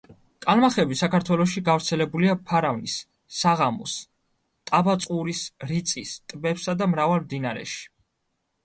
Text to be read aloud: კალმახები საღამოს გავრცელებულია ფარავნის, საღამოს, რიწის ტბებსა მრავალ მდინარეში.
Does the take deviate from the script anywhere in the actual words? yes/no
yes